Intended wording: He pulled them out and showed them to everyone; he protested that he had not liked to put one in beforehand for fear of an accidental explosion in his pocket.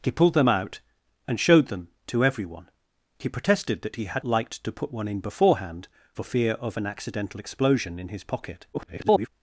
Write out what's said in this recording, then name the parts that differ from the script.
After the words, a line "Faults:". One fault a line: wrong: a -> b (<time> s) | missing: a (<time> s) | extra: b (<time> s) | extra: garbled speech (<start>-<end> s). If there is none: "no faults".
He pulled them out and showed them to everyone; he protested that he had liked to put one in beforehand for fear of an accidental explosion in his pocket. [garbled]
Faults:
missing: not (4.2 s)
extra: garbled speech (8.7-9.3 s)